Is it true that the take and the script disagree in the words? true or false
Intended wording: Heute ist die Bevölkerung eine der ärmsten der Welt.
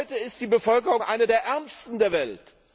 false